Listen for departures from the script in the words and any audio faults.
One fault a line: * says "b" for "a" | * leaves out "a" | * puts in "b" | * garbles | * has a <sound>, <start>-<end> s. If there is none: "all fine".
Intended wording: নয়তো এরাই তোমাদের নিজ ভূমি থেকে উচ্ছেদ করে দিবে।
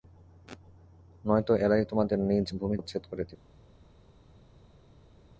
* leaves out "থেকে"